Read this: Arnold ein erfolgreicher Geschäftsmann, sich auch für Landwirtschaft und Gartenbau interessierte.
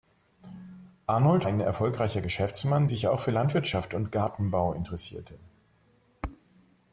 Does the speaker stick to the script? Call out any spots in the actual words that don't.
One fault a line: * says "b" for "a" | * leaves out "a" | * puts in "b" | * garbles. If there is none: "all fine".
all fine